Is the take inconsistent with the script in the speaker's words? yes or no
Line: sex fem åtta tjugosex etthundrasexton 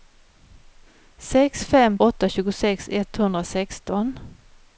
no